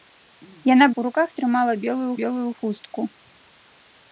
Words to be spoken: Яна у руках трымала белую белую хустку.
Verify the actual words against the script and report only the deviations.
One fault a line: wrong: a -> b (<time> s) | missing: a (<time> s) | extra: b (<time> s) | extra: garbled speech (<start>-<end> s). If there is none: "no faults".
no faults